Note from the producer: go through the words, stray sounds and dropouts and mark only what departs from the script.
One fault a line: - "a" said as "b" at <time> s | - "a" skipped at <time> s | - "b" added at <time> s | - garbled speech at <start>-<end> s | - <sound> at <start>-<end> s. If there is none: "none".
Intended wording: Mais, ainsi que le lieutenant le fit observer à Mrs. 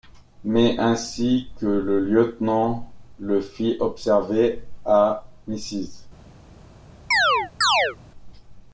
- chirp at 7.1-8.0 s